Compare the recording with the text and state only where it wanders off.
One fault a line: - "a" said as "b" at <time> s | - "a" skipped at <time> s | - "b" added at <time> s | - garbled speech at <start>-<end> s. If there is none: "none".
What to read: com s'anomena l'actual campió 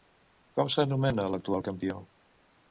none